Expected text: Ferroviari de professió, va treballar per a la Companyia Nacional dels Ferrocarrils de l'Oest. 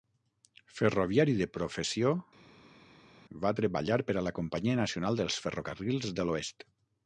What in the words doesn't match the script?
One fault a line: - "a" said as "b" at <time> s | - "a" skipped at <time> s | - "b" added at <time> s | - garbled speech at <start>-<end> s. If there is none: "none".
none